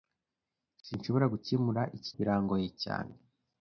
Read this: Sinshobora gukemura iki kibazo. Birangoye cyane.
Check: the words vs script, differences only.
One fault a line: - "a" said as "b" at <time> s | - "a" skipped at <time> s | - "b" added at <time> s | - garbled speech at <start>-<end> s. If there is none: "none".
- "kibazo" skipped at 2.1 s